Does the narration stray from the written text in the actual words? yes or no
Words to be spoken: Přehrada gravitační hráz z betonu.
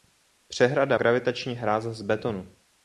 no